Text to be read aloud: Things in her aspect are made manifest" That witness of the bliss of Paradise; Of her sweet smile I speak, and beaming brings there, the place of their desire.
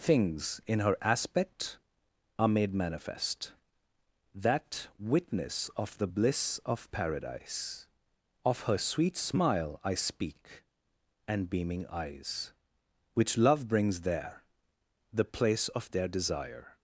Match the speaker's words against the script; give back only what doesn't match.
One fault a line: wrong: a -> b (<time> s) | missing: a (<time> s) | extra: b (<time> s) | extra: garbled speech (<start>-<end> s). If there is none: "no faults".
extra: eyes Which Love (11.9 s)